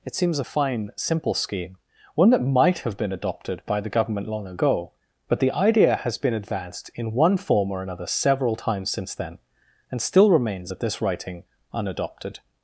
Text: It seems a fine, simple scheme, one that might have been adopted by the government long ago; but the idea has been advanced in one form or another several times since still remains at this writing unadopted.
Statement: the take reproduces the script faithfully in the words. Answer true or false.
false